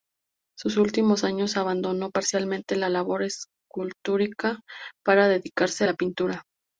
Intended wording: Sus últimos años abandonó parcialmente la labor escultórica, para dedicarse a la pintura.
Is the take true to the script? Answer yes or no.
yes